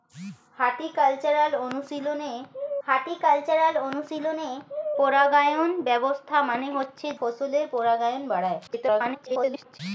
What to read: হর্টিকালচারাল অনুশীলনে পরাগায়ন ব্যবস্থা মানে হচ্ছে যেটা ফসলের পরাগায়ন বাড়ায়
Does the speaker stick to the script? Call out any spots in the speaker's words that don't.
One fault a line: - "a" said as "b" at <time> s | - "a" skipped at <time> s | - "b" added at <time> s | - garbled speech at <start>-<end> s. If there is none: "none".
- "হর্টিকালচারাল অনুশীলনে" added at 2.9 s
- "যেটা" skipped at 7.1 s
- garbled speech at 8.7-9.8 s